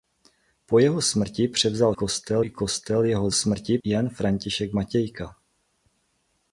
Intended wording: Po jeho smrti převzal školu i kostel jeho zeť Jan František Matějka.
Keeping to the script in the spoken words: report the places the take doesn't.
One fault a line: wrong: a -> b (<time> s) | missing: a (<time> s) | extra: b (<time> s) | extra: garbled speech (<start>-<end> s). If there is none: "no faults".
wrong: školu -> kostel (1.9 s)
wrong: zeť -> smrti (3.3 s)